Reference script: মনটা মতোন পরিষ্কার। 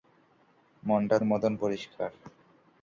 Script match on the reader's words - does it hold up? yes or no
yes